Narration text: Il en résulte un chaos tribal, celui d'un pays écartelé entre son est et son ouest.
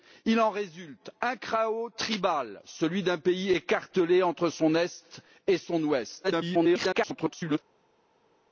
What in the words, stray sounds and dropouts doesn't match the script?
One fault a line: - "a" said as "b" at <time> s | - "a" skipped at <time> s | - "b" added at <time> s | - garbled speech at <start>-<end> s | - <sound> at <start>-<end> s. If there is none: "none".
- garbled speech at 6.2-7.6 s